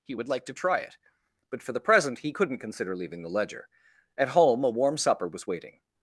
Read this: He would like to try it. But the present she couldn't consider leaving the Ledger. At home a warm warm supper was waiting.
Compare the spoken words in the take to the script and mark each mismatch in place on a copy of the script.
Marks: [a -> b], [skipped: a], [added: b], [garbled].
He would like to try it. But [added: for] the present [she -> he] couldn't consider leaving the Ledger. At home a warm [skipped: warm] supper was waiting.